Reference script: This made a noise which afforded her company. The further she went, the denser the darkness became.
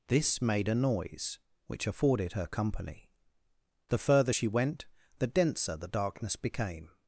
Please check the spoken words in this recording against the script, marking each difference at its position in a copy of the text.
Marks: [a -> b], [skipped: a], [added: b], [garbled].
This made a noise which afforded her company. The further she went, the denser the darkness became.